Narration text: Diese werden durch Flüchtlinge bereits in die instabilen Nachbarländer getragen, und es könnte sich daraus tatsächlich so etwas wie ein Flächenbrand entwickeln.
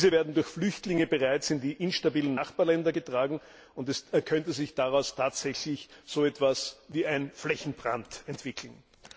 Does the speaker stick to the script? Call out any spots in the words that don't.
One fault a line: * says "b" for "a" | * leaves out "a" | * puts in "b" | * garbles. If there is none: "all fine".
all fine